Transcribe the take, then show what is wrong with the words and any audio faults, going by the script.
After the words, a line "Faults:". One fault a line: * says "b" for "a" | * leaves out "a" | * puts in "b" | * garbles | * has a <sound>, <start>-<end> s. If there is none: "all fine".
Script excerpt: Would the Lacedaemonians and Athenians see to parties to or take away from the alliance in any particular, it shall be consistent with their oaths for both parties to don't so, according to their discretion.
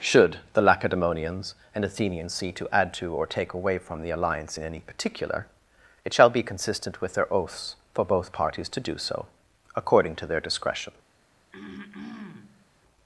Should the Lacedaemonians and Athenians see to add to or take away from the alliance in any particular, it shall be consistent with their oaths for both parties to do so, according to their discretion.
Faults:
* says "Should" for "Would"
* says "add" for "parties"
* says "do" for "don't"
* has a throat clearing, 11.5-12.7 s